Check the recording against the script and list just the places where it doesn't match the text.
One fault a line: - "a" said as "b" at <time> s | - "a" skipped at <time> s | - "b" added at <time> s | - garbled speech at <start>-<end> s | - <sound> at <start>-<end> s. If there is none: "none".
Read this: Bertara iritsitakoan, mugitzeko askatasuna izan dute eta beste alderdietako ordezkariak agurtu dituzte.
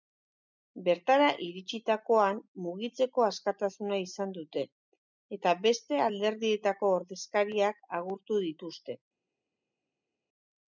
none